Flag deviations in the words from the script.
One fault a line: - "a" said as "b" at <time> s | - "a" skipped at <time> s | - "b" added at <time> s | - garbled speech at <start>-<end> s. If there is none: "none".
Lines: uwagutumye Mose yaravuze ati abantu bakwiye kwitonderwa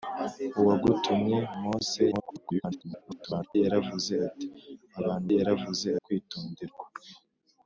- garbled speech at 2.1-3.6 s
- "bakwiye" said as "yaravuze" at 5.4 s